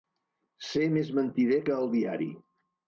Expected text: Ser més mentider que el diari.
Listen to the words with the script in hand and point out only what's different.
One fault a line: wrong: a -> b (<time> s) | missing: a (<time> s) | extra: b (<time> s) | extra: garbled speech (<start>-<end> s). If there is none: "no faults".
no faults